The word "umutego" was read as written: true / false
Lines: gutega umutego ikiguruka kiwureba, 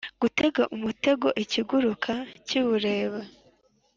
true